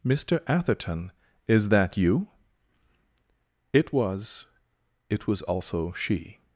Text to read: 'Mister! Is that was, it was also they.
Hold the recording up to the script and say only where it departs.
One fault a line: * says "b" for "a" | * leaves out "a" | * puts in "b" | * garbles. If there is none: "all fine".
* puts in "Atherton"
* puts in "you It"
* says "she" for "they"